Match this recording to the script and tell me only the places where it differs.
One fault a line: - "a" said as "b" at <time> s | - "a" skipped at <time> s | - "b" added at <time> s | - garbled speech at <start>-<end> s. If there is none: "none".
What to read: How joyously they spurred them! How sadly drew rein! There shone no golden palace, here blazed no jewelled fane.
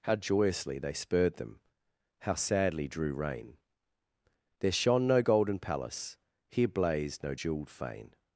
none